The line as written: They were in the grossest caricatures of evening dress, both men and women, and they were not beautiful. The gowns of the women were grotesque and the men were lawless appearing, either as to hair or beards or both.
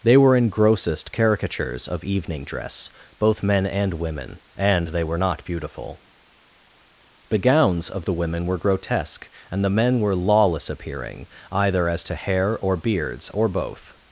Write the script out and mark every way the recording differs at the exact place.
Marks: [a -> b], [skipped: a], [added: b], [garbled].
They were in [skipped: the] grossest caricatures of evening dress, both men and women, and they were not beautiful. The gowns of the women were grotesque and the men were lawless appearing, either as to hair or beards or both.